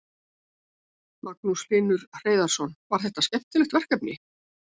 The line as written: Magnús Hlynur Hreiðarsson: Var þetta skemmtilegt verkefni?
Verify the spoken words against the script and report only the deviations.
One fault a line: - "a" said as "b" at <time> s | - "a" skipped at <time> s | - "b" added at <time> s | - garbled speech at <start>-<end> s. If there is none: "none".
none